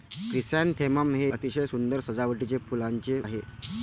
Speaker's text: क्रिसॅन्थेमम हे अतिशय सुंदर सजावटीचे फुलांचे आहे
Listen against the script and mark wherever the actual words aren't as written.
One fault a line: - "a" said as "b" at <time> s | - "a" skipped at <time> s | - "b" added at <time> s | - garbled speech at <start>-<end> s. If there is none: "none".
none